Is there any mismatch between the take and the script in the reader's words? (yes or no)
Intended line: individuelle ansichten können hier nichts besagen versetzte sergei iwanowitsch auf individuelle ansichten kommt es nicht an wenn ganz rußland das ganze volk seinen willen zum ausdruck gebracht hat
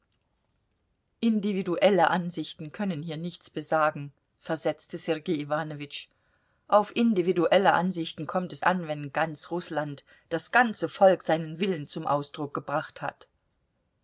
yes